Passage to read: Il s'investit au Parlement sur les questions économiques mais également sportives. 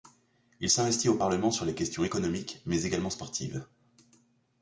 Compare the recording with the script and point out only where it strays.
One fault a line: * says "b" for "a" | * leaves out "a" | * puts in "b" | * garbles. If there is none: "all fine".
all fine